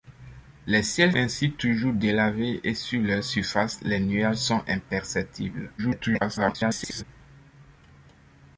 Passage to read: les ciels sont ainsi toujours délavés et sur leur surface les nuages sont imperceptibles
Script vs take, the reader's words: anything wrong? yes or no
yes